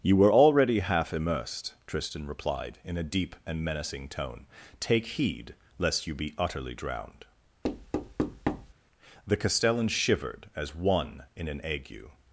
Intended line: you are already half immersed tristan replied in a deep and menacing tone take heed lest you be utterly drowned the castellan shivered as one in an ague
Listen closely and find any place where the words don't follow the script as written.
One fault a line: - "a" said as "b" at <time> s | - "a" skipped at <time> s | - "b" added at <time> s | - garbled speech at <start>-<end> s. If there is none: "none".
- "are" said as "were" at 0.1 s